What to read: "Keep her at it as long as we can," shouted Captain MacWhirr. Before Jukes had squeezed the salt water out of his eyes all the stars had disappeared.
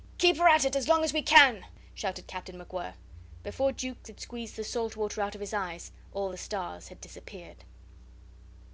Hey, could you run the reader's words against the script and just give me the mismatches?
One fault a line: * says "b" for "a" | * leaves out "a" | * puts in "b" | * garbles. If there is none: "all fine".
all fine